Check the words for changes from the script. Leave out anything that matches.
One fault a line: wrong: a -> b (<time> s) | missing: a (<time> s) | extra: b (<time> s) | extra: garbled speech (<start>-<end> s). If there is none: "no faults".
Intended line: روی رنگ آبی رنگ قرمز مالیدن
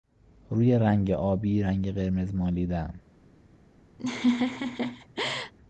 no faults